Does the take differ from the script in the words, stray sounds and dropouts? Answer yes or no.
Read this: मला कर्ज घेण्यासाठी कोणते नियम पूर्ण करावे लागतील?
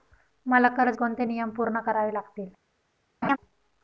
yes